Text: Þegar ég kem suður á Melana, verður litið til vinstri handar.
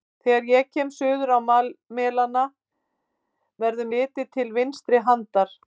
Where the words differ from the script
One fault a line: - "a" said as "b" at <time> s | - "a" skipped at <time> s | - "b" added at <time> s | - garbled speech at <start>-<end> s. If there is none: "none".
none